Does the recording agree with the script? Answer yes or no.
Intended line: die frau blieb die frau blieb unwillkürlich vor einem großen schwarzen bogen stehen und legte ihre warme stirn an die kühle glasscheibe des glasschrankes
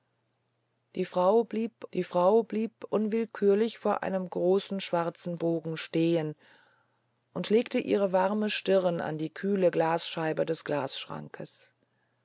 yes